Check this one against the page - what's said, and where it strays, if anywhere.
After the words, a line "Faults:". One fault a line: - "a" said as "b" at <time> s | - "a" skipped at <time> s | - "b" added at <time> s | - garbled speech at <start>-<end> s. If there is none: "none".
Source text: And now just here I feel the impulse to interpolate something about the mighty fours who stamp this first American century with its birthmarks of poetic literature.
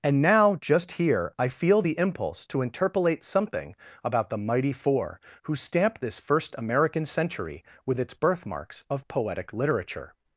And now just here I feel the impulse to interpolate something about the mighty four who stamp this first American century with its birthmarks of poetic literature.
Faults:
- "fours" said as "four" at 4.7 s